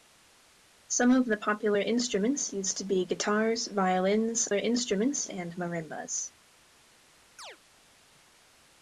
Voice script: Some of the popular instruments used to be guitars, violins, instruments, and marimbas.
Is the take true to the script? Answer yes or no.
yes